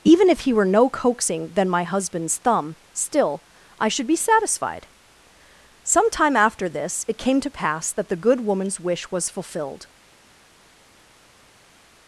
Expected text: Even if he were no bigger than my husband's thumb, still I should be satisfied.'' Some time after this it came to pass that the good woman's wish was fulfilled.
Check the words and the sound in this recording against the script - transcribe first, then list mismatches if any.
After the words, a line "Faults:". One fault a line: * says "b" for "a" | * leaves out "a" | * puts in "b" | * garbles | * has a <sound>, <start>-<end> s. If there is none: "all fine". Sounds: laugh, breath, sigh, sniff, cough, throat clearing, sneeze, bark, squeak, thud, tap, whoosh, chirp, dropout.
Even if he were no coaxing than my husband's thumb, still I should be satisfied.'' Some time after this it came to pass that the good woman's wish was fulfilled.
Faults:
* says "coaxing" for "bigger"